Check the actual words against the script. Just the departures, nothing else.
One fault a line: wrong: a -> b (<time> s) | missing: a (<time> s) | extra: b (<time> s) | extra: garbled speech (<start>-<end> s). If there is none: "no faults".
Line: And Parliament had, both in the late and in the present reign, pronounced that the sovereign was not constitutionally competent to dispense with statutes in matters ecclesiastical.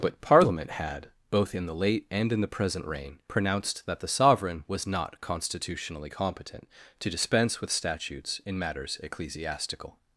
wrong: And -> But (0.0 s)